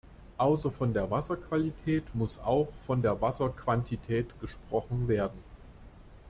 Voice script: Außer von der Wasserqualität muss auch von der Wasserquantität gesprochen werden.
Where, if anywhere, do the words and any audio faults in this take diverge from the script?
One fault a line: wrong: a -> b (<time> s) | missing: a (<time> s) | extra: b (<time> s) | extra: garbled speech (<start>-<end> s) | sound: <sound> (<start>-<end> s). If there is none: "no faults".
no faults